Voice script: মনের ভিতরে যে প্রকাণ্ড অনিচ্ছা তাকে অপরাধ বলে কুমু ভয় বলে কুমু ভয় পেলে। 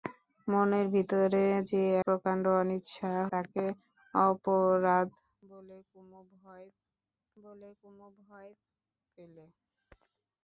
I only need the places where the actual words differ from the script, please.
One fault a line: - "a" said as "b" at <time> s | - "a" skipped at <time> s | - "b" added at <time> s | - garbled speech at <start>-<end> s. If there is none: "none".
none